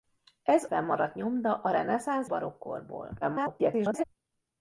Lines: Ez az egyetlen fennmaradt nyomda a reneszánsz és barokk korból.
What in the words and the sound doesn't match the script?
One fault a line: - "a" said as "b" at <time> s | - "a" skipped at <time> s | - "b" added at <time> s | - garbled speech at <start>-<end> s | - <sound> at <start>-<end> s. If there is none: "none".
- "az egyetlen" skipped at 0.7 s
- "és" skipped at 2.3 s
- garbled speech at 3.2-4.0 s